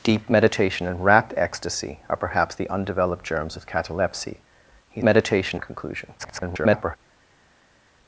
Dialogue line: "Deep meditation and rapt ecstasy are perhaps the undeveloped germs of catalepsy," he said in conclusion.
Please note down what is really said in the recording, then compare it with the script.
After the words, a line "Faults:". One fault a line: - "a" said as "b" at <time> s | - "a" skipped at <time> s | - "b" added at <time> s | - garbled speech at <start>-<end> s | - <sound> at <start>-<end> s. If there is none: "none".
"Deep meditation and rapt ecstasy are perhaps the undeveloped germs of catalepsy," he meditation in conclusion. [garbled]
Faults:
- "said" said as "meditation" at 5.0 s
- garbled speech at 6.2-7.0 s